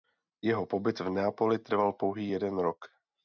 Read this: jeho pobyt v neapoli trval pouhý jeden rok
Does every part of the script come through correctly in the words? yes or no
yes